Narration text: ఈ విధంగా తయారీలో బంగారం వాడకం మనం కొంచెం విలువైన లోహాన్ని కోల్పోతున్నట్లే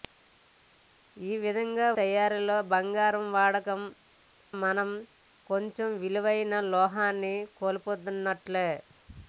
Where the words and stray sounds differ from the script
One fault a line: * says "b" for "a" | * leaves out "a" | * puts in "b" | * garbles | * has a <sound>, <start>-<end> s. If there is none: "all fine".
all fine